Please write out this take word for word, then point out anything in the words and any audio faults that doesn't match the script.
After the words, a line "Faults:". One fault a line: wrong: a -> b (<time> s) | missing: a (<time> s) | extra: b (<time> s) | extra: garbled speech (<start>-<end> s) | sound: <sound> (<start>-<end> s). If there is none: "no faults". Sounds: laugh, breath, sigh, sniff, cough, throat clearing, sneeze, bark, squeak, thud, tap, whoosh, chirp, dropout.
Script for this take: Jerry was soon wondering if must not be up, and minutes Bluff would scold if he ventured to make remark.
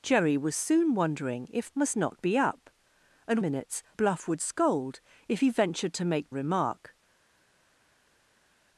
Jerry was soon wondering if must not be up, and minutes Bluff would scold if he ventured to make remark.
Faults:
no faults